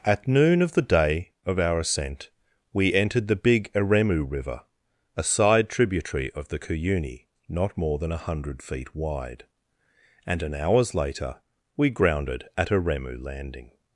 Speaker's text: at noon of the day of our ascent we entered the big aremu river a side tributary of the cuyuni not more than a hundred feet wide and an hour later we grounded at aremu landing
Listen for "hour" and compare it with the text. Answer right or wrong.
wrong